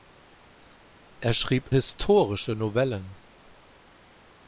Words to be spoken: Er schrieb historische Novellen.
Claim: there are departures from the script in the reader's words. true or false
false